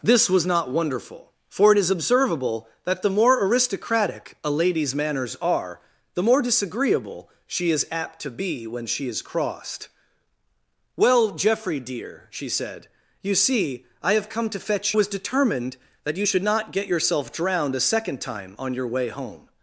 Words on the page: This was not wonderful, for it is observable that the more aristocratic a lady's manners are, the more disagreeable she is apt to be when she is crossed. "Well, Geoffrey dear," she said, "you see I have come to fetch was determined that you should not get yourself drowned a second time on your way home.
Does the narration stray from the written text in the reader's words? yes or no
no